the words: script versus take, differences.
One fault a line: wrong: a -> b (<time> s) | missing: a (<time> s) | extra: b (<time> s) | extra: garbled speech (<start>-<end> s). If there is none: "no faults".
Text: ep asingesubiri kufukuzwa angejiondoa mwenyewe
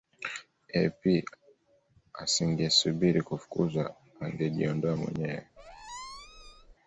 no faults